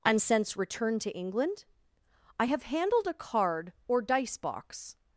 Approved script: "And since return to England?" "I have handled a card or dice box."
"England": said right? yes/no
yes